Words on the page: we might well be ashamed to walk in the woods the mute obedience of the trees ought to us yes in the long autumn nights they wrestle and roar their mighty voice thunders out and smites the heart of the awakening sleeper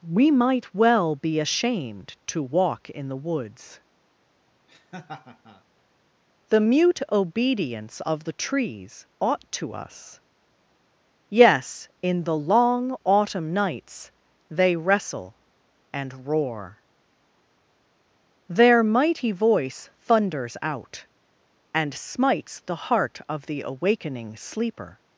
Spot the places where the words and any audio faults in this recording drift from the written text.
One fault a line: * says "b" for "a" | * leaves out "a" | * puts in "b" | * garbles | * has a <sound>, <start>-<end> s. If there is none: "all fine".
* has a laugh, 4.7-5.6 s